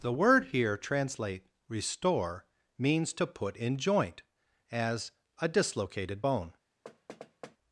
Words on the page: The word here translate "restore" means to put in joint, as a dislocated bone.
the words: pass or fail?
pass